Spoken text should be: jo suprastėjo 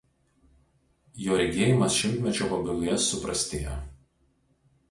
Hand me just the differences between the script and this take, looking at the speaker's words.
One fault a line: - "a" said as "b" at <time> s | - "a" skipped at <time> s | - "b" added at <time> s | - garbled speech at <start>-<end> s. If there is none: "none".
- "regėjimas šimtmečio pabaigoje" added at 1.4 s